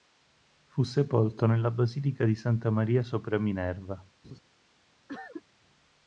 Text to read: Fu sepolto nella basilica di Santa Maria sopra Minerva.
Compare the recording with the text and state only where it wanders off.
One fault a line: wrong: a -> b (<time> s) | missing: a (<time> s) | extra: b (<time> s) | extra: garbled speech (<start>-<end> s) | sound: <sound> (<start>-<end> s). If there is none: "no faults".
sound: laugh (4.2-4.4 s)
sound: cough (5.1-5.4 s)